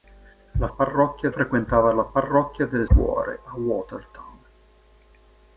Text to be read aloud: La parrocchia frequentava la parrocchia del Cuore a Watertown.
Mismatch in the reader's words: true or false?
false